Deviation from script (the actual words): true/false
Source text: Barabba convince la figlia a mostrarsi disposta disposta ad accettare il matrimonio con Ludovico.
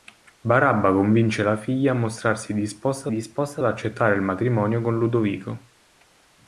false